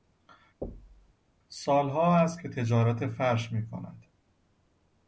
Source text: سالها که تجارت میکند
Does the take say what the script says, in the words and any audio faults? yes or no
no